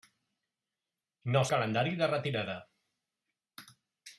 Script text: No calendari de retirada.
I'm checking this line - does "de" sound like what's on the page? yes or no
yes